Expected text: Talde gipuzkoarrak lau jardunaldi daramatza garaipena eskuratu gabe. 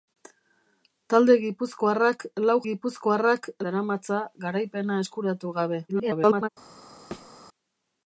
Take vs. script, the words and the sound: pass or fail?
fail